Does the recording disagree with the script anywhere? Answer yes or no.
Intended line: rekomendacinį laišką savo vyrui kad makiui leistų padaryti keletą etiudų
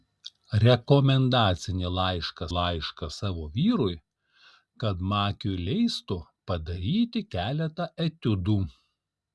yes